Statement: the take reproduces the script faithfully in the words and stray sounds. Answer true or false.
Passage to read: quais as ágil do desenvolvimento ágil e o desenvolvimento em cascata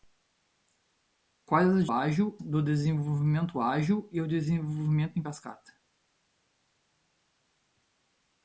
true